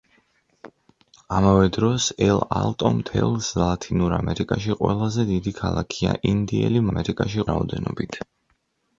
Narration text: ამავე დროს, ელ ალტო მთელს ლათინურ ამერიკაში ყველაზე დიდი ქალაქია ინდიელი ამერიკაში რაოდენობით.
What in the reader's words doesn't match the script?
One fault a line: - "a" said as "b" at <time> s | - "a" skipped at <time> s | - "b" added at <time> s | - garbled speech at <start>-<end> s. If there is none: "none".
none